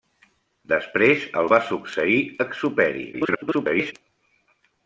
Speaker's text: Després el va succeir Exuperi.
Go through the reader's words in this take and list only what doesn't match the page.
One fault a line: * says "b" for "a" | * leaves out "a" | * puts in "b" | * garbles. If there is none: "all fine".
* garbles